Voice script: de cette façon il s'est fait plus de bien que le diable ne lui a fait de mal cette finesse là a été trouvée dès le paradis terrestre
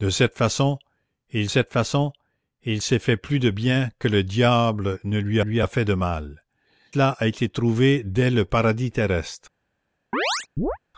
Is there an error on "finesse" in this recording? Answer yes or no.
yes